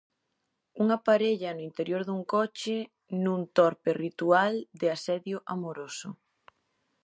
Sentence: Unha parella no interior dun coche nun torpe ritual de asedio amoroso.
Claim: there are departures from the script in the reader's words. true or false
false